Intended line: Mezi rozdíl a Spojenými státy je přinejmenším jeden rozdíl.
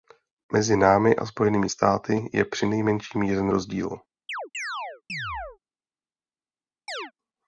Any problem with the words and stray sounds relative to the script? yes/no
yes